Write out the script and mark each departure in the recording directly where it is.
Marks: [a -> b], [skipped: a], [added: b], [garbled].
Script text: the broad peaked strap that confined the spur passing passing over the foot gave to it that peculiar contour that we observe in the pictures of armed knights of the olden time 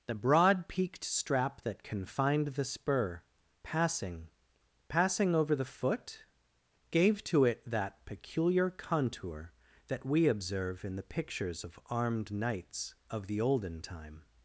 the broad peaked strap that confined the spur passing passing over the foot gave to it that peculiar contour that we observe in the pictures of armed knights of the olden time